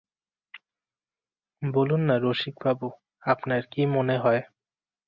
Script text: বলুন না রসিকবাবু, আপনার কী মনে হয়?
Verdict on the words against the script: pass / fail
pass